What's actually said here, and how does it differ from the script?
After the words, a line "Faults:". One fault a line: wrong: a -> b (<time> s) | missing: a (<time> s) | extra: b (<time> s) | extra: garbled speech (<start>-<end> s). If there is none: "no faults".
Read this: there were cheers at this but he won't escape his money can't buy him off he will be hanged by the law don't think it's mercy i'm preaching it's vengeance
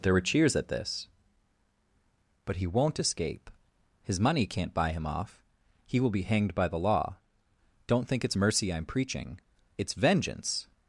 there were cheers at this but he won't escape his money can't buy him off he will be hanged by the law don't think it's mercy i'm preaching it's vengeance
Faults:
no faults